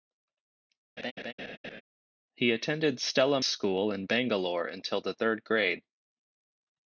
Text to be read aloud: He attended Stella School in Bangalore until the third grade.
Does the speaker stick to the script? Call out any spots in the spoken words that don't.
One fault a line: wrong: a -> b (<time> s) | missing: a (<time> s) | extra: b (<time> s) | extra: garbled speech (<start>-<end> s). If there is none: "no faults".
no faults